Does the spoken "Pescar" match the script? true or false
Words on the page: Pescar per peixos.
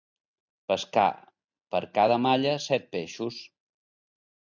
true